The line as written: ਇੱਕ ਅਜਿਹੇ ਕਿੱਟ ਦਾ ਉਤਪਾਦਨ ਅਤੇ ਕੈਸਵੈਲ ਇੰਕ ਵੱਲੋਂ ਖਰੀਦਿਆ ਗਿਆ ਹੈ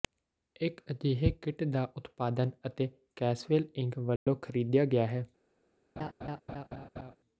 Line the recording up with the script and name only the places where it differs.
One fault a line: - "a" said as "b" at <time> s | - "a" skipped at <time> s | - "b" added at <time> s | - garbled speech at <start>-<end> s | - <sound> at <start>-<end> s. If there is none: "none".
- dropout at 4.2-4.3 s
- laugh at 6.0-7.2 s